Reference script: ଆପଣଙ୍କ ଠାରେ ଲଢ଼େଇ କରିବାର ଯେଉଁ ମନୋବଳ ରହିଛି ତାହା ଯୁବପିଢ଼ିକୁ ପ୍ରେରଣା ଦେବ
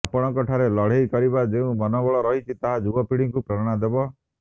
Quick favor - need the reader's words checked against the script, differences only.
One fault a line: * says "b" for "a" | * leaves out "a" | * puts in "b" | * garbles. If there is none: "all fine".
all fine